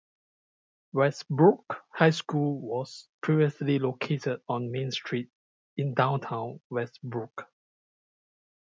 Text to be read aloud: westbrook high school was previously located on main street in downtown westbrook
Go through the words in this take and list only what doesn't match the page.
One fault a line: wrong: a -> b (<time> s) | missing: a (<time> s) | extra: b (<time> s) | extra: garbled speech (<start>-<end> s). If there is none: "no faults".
no faults